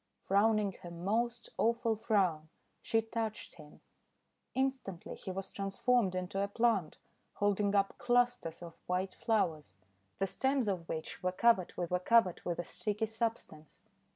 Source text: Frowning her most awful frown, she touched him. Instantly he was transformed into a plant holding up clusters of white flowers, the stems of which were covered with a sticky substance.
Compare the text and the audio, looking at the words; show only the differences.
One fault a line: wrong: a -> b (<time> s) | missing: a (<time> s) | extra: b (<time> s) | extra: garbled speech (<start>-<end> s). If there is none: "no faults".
extra: were covered with (11.9 s)